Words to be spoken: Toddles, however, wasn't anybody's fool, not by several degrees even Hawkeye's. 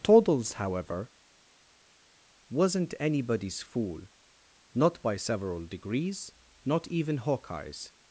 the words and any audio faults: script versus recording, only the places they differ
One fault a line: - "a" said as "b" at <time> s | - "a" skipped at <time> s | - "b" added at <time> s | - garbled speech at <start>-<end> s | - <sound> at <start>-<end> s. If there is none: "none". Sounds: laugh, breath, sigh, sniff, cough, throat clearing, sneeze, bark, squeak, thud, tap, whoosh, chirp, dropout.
- "not" added at 6.6 s